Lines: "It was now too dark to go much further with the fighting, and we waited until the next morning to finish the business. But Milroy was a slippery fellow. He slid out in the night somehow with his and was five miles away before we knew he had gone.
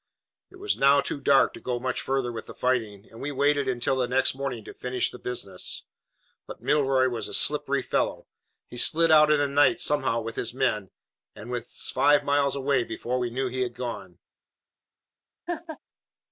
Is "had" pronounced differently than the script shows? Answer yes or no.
no